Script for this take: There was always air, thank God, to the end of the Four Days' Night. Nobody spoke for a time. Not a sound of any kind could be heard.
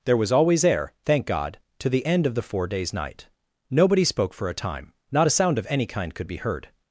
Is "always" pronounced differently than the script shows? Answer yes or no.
no